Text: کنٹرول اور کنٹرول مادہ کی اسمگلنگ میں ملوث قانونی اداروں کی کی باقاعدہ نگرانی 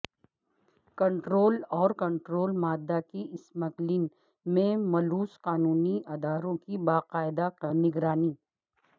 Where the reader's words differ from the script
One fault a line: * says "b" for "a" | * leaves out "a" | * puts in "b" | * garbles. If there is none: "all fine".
* leaves out "کی"